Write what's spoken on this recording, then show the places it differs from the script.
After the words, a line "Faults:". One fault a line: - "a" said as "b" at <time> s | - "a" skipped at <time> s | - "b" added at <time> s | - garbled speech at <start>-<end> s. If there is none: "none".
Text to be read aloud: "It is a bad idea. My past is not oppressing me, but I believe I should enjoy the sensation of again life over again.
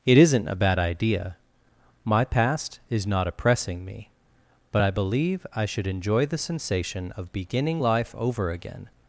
"It isn't a bad idea. My past is not oppressing me, but I believe I should enjoy the sensation of beginning life over again.
Faults:
- "is" said as "isn't" at 0.2 s
- "again" said as "beginning" at 7.3 s